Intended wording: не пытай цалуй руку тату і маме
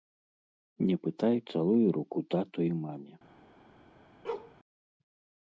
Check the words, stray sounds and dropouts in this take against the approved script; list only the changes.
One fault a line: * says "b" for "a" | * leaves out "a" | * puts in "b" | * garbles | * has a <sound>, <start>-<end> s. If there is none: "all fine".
* has a bark, 4.2-4.5 s